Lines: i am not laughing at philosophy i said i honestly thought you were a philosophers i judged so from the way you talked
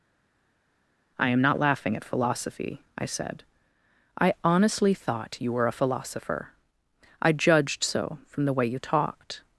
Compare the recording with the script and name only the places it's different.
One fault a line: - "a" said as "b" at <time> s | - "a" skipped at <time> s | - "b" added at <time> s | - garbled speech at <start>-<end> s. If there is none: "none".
- "philosophers" said as "philosopher" at 5.7 s